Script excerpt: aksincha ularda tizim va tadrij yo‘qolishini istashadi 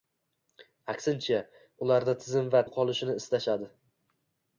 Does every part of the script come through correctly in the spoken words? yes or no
no